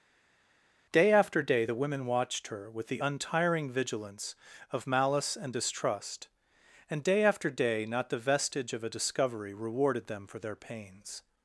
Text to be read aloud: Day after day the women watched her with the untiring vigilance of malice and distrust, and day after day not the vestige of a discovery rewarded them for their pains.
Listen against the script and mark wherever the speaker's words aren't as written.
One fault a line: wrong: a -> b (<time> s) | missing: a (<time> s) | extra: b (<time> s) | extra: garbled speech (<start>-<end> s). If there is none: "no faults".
no faults